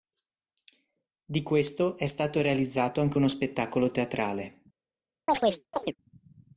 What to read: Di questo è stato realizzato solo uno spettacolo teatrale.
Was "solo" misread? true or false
true